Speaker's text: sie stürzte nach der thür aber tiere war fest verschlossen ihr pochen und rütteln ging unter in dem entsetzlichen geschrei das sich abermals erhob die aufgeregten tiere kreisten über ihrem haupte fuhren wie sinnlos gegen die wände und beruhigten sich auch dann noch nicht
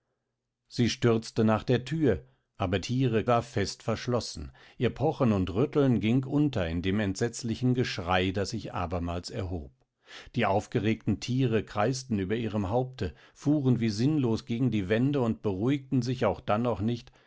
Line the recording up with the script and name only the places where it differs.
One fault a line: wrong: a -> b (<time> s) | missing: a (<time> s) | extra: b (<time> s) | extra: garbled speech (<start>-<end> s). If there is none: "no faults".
no faults